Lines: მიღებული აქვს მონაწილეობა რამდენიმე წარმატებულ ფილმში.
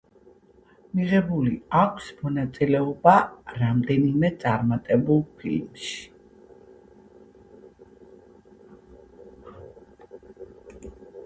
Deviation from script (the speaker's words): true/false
false